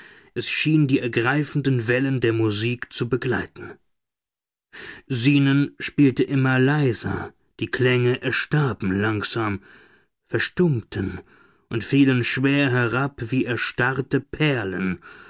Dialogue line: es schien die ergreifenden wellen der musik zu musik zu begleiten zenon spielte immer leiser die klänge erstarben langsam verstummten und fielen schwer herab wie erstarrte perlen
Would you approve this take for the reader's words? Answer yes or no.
no